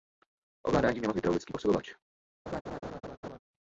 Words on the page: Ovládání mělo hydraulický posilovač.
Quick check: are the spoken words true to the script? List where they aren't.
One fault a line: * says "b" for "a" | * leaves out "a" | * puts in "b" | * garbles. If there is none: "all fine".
all fine